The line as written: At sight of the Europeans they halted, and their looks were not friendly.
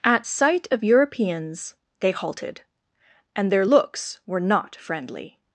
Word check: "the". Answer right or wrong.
wrong